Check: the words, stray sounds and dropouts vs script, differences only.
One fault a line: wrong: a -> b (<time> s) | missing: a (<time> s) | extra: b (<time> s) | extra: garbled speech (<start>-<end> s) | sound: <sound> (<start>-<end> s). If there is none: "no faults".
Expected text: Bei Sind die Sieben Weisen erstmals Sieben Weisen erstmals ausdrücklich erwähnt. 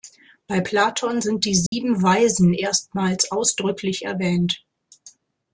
extra: Platon (0.6 s)
sound: dropout (1.7-1.7 s)
missing: Sieben Weisen erstmals (3.3 s)